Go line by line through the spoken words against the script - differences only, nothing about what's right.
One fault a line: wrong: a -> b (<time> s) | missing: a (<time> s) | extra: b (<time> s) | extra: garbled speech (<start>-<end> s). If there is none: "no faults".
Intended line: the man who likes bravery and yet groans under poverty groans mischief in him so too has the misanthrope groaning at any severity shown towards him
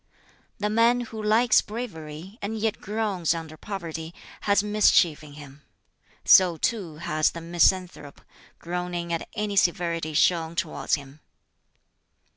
wrong: groans -> has (4.5 s)